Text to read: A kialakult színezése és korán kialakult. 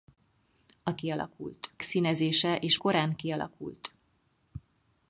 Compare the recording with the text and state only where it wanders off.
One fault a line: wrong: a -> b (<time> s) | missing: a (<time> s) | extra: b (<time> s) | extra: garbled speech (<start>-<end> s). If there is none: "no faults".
no faults